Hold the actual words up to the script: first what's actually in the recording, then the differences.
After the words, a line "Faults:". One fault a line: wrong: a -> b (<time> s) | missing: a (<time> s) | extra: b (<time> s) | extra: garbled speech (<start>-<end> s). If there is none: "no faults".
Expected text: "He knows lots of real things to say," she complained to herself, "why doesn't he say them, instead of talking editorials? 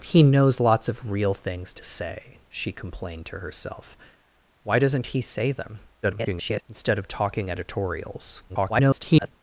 "He knows lots of real things to say," she complained to herself, "why doesn't he say them, [garbled] instead of talking editorials? [garbled]
Faults:
extra: garbled speech (6.0-6.6 s)
extra: garbled speech (8.5-9.3 s)